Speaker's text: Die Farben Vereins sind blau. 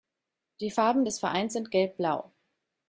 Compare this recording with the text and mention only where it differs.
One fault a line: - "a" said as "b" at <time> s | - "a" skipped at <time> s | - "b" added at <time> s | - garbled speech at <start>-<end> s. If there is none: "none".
- "des" added at 1.0 s
- "gelb" added at 1.7 s